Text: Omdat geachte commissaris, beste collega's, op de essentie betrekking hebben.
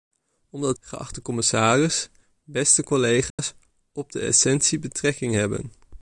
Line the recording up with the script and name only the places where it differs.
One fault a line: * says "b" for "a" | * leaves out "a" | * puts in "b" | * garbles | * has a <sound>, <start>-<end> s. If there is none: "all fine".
* has a dropout, 3.3-3.4 s